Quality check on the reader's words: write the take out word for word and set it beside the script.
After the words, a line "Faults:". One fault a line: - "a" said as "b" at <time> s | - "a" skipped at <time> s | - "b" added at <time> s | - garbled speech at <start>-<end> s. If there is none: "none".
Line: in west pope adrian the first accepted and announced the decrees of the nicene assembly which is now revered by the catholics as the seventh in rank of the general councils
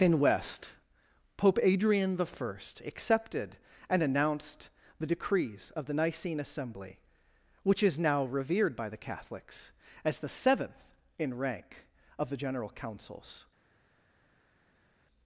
in west pope adrian the first accepted and announced the decrees of the nicene assembly which is now revered by the catholics as the seventh in rank of the general councils
Faults:
none